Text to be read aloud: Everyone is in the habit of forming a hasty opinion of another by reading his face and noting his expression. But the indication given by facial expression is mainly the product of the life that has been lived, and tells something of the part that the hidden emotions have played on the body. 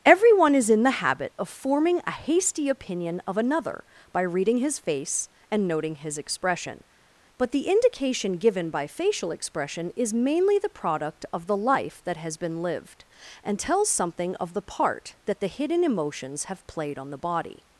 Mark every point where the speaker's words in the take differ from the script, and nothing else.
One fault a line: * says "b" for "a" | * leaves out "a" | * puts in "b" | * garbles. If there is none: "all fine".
all fine